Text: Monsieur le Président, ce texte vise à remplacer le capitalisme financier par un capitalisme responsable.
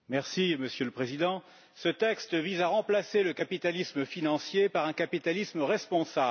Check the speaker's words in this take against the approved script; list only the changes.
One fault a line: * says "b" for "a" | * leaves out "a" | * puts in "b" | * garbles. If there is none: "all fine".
all fine